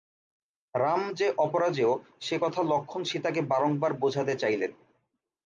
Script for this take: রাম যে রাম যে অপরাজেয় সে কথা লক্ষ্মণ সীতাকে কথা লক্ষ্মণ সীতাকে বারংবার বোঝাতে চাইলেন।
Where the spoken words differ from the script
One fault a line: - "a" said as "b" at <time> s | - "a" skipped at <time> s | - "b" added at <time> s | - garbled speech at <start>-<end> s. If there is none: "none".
- "রাম যে" skipped at 1.3 s
- "কথা লক্ষ্মণ সীতাকে" skipped at 3.4 s